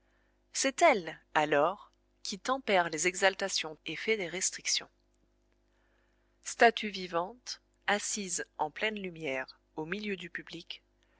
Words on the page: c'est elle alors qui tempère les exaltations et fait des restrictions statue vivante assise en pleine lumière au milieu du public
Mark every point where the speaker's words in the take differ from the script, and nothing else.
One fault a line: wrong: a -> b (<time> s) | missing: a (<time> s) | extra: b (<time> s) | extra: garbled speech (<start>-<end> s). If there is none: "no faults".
no faults